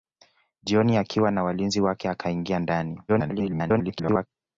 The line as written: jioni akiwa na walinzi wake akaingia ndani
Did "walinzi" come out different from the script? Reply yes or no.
no